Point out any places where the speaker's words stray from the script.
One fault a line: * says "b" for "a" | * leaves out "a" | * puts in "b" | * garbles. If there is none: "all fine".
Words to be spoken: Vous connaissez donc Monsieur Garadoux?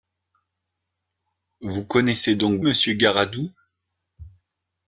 all fine